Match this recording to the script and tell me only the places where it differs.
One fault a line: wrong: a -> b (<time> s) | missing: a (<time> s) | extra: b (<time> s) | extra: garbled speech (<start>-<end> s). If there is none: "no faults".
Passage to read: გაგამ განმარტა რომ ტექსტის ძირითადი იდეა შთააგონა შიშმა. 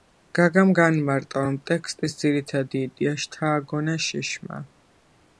no faults